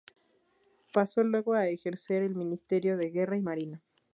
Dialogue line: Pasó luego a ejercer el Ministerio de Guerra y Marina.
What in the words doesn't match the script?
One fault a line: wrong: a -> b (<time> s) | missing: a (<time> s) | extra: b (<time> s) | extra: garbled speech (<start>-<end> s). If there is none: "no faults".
no faults